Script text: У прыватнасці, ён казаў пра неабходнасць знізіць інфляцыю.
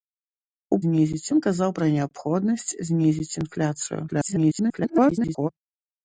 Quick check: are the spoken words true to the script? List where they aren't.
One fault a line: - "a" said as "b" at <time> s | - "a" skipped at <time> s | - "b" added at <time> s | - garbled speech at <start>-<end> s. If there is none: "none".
- "прыватнасці" said as "знізіць" at 0.9 s
- garbled speech at 4.1-5.5 s